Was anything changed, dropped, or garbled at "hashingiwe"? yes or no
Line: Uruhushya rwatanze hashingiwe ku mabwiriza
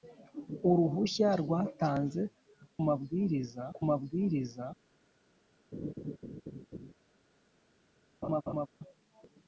yes